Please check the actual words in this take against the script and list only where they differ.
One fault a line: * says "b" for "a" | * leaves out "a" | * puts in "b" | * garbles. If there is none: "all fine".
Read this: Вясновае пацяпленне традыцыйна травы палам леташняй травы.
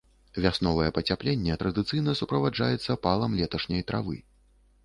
* says "суправаджаецца" for "травы"